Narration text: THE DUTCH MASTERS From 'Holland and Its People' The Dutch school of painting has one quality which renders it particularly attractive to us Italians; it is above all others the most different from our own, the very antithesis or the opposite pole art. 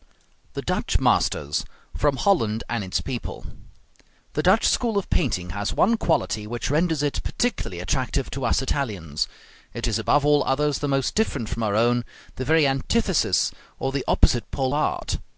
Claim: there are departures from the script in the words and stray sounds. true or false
false